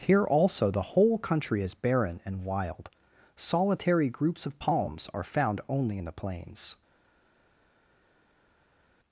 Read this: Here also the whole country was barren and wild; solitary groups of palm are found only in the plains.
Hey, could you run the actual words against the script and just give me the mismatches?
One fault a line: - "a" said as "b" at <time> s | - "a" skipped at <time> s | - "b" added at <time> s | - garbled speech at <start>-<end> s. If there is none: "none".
- "was" said as "is" at 1.6 s
- "palm" said as "palms" at 4.6 s